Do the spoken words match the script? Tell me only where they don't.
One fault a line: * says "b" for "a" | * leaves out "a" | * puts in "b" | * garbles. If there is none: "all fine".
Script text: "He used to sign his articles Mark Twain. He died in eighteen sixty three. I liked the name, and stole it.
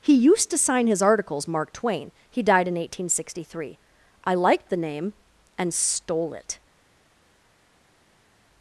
all fine